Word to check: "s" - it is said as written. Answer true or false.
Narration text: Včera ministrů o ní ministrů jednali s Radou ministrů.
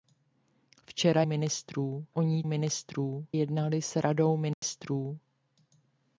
true